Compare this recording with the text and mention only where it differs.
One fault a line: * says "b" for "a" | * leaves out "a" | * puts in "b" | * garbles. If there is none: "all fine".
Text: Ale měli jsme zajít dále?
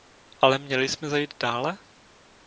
all fine